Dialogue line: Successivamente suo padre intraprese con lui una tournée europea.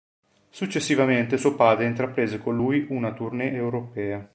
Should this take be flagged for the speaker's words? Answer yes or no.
no